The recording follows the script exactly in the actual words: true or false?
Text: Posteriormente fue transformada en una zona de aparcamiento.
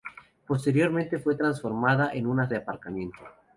false